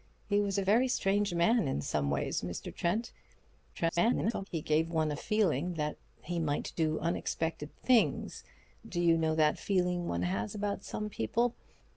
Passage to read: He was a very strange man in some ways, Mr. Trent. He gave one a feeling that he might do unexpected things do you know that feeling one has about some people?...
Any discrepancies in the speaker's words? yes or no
yes